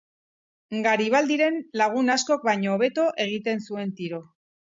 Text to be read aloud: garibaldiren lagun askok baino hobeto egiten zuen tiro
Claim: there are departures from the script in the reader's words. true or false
false